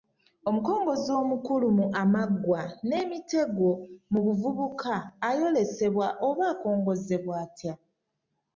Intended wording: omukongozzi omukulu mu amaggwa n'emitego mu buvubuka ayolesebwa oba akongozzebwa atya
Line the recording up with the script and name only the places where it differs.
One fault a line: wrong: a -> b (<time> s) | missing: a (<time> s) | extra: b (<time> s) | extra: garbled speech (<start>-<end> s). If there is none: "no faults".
no faults